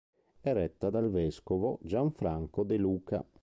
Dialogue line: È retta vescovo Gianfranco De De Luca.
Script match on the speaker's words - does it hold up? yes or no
no